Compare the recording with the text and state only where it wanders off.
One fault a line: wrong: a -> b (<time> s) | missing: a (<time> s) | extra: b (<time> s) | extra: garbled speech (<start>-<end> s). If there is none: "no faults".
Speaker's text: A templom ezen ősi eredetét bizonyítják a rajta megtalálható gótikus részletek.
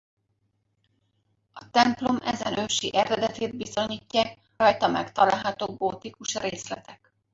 missing: a (4.4 s)